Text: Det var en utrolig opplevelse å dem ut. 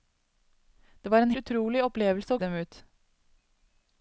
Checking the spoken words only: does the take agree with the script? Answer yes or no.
yes